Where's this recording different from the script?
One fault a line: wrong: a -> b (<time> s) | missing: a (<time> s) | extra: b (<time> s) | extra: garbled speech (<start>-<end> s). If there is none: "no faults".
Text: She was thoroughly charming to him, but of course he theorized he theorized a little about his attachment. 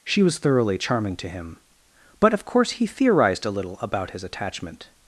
missing: he theorized (3.4 s)